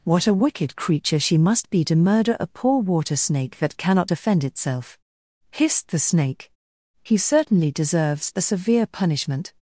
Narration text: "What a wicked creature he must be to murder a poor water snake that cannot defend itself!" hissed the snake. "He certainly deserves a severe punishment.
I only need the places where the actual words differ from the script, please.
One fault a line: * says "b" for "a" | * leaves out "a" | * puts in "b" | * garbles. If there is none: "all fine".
* says "she" for "he"